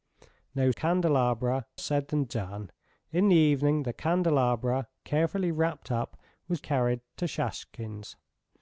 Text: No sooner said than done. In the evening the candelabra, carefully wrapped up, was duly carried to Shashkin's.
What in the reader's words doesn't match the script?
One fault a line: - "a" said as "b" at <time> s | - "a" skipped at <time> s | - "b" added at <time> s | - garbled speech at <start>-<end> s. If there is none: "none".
- "sooner" said as "candelabra" at 0.7 s
- "duly" skipped at 6.6 s